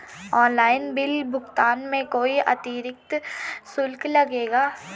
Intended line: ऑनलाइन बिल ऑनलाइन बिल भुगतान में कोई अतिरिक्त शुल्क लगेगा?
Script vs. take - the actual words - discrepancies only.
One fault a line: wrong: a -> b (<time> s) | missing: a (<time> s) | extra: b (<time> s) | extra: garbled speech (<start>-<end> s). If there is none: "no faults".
missing: ऑनलाइन बिल (1.2 s)